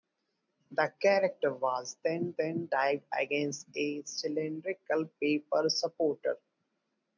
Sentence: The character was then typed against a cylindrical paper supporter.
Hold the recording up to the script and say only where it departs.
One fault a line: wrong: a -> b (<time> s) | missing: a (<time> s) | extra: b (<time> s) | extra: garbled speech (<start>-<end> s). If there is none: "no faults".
extra: then (2.4 s)